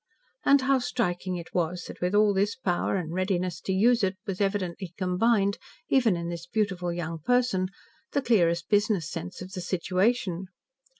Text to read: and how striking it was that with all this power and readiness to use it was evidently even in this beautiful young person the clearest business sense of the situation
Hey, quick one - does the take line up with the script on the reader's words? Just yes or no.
no